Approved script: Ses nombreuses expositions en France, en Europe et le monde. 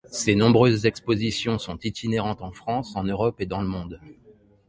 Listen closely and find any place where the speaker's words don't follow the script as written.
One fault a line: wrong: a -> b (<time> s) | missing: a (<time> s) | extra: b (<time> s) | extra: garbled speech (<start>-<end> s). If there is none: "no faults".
extra: sont itinérantes (1.6 s)
extra: dans (3.5 s)